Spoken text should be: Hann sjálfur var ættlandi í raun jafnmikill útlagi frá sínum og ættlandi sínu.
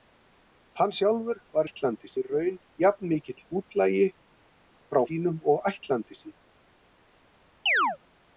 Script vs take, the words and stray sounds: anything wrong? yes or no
yes